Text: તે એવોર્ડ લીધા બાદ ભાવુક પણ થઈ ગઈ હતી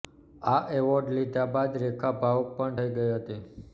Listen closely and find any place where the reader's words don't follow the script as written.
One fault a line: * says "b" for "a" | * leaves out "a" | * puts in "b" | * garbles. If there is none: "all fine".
* says "આ" for "તે"
* puts in "રેખા"